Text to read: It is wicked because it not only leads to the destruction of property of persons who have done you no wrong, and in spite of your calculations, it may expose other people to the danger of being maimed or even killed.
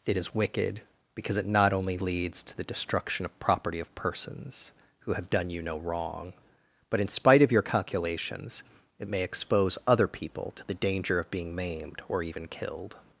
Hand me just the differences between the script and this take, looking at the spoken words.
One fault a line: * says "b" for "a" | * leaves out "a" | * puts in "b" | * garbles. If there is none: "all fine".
* says "but" for "and"